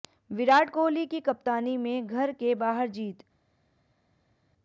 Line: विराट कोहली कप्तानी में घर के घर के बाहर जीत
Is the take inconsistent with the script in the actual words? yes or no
yes